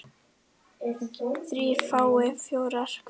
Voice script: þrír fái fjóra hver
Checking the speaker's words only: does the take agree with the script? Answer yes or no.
yes